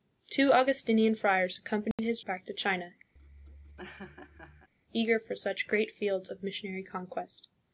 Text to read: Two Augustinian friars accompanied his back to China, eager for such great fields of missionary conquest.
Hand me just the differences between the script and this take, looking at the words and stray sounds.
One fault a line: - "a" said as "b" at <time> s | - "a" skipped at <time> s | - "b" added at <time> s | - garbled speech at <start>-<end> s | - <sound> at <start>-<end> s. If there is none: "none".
- dropout at 1.9-2.0 s
- laugh at 3.2-4.7 s